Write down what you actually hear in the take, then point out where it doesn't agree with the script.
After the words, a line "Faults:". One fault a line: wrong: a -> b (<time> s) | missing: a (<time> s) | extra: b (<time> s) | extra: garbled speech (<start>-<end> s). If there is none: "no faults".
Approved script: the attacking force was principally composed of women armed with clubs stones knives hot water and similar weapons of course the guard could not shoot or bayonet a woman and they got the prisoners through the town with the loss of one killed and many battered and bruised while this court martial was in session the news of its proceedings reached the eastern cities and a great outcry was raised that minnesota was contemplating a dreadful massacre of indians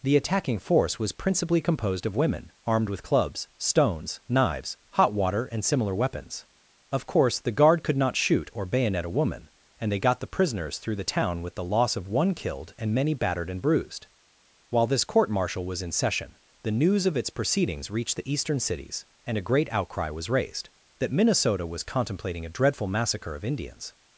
the attacking force was principally composed of women armed with clubs stones knives hot water and similar weapons of course the guard could not shoot or bayonet a woman and they got the prisoners through the town with the loss of one killed and many battered and bruised while this court martial was in session the news of its proceedings reached the eastern cities and a great outcry was raised that minnesota was contemplating a dreadful massacre of indians
Faults:
no faults